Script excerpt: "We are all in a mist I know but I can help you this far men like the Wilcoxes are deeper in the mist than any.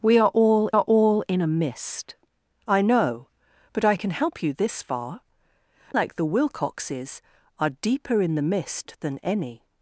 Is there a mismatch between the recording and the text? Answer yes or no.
yes